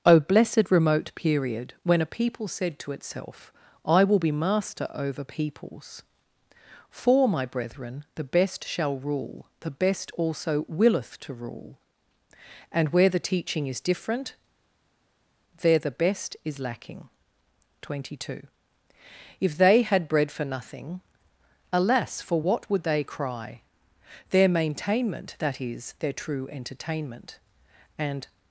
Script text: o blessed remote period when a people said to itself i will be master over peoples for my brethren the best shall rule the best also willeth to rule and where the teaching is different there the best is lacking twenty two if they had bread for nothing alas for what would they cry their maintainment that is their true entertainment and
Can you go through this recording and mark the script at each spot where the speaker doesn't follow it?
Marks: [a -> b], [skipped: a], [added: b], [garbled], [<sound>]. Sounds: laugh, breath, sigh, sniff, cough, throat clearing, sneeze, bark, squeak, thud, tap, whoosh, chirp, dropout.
o blessed remote period when a people said to itself i will be master over peoples for my brethren the best shall rule the best also willeth to rule and where the teaching is different there the best is lacking twenty two if they had bread for nothing alas for what would they cry their maintainment that is their true entertainment and